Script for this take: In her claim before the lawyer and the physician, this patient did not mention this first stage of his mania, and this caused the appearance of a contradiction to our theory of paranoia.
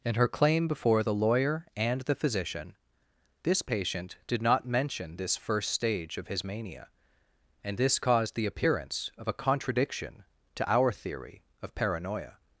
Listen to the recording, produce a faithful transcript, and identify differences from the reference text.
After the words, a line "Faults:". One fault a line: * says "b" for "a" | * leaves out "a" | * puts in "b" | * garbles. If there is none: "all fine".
In her claim before the lawyer and the physician, this patient did not mention this first stage of his mania, and this caused the appearance of a contradiction to our theory of paranoia.
Faults:
all fine